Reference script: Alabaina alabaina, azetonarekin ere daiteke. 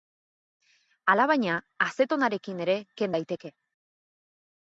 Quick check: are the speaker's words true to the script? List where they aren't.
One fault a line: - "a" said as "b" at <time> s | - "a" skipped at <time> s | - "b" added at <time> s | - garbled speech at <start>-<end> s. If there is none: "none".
- "alabaina" skipped at 1.6 s
- "ken" added at 3.0 s